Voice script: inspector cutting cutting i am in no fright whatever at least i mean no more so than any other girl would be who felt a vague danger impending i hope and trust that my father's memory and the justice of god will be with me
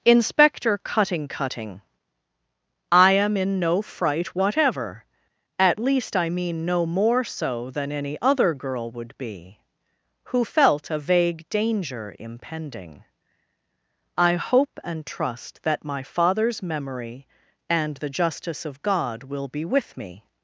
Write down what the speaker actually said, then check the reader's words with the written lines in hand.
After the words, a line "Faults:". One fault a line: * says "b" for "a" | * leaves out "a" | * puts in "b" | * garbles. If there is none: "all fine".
inspector cutting cutting i am in no fright whatever at least i mean no more so than any other girl would be who felt a vague danger impending i hope and trust that my father's memory and the justice of god will be with me
Faults:
all fine